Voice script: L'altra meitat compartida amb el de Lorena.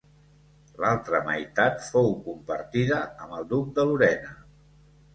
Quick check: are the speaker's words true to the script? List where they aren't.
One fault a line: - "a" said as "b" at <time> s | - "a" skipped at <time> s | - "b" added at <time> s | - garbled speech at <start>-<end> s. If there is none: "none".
- "fou" added at 1.9 s
- "duc" added at 3.5 s